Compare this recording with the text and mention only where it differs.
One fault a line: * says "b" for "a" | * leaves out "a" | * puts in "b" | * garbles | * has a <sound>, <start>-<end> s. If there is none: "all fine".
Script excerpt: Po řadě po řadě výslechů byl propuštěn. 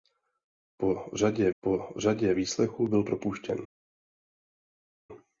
all fine